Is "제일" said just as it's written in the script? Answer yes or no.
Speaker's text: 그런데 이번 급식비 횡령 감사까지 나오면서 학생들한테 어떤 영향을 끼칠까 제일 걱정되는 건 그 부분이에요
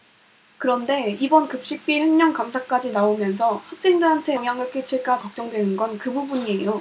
no